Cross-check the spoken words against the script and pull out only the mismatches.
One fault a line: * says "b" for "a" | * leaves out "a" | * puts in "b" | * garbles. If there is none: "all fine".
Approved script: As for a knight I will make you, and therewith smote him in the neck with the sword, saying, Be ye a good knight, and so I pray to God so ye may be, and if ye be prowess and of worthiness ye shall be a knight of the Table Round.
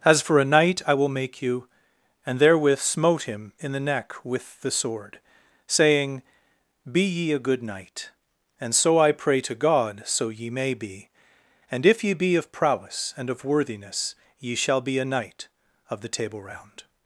* puts in "of"